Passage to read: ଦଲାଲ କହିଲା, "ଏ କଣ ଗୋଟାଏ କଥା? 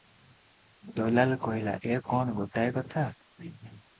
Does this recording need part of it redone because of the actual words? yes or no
no